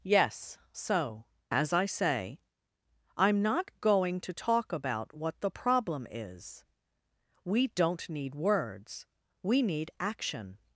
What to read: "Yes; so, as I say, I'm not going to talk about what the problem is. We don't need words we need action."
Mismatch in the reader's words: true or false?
false